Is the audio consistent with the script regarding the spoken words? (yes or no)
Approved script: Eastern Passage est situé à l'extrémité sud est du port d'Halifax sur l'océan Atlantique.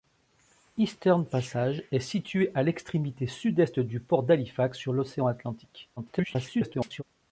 no